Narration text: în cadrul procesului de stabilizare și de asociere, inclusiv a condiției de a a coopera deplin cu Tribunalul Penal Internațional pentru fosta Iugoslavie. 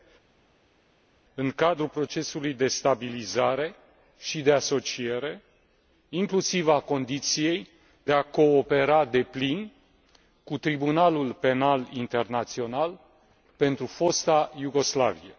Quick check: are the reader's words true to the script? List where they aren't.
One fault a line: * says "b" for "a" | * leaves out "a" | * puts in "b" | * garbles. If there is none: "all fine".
* leaves out "a"